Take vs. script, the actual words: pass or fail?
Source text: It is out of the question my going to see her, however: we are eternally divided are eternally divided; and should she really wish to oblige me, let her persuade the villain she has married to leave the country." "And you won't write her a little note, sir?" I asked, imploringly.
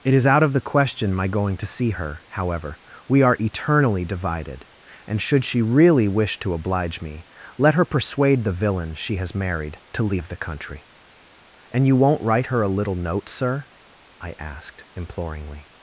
fail